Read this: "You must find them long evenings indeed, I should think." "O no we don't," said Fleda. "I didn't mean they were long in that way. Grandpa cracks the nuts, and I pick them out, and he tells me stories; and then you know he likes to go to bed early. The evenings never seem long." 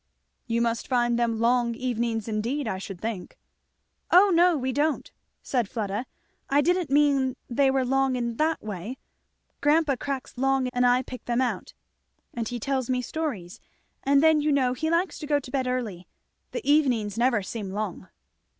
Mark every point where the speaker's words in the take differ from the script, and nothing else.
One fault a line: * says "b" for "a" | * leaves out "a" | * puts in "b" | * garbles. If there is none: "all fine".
* says "long" for "nuts"